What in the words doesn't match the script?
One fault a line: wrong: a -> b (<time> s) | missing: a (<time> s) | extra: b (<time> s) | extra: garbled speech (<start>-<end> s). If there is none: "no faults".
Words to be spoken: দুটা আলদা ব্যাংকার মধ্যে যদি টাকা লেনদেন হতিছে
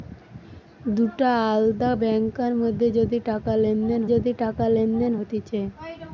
extra: যদি টাকা লেনদেন (4.1 s)